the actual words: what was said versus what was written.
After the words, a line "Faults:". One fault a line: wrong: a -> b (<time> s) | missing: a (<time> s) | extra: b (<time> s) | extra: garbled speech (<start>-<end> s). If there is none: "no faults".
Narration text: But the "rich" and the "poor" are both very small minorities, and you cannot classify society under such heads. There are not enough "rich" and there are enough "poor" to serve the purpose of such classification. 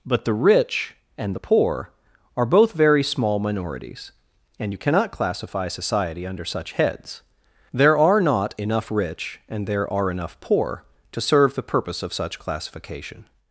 But the "rich" and the "poor" are both very small minorities, and you cannot classify society under such heads. There are not enough "rich" and there are enough "poor" to serve the purpose of such classification.
Faults:
no faults